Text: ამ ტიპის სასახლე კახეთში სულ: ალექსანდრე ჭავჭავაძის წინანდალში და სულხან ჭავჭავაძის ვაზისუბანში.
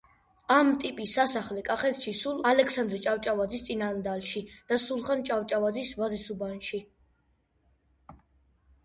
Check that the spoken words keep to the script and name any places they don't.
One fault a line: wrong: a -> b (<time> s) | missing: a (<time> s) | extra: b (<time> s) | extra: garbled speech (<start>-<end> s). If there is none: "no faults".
no faults